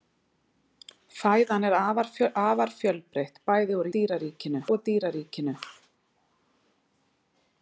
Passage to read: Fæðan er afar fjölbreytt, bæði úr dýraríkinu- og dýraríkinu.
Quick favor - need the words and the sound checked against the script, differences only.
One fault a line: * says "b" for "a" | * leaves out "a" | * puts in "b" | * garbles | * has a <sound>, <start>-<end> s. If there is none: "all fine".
all fine